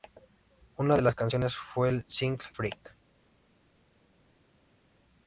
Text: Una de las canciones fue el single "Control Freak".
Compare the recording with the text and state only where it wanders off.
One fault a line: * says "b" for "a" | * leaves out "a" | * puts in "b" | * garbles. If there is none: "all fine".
* leaves out "Control"